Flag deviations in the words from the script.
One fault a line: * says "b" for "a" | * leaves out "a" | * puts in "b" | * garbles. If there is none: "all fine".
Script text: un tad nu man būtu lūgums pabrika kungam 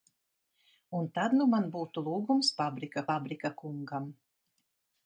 * puts in "pabrika"